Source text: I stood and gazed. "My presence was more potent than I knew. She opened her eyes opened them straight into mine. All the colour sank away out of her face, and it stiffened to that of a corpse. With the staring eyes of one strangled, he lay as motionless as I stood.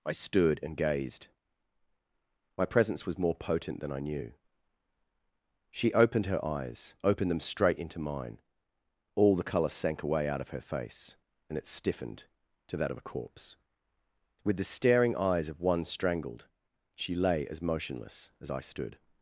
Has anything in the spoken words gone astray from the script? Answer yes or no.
yes